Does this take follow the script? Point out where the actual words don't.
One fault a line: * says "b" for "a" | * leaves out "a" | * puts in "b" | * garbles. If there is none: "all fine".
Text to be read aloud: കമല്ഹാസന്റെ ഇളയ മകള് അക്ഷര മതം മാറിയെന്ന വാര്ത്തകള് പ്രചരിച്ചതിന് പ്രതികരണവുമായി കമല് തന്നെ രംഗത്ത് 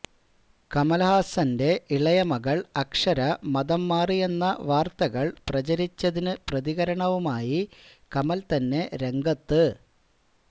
all fine